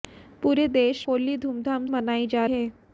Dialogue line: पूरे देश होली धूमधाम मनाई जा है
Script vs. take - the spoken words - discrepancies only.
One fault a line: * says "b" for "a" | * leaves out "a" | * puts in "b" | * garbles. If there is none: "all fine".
all fine